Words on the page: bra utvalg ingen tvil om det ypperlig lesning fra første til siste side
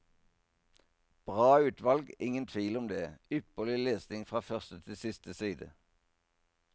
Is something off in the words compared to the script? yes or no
no